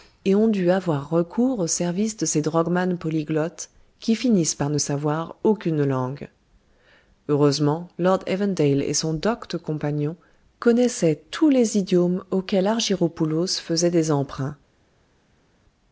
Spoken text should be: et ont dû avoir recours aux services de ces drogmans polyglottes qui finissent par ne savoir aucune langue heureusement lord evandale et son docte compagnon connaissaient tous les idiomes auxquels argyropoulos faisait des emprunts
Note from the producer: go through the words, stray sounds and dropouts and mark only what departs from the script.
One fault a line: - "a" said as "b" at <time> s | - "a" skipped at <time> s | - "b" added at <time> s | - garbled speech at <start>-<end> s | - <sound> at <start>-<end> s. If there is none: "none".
none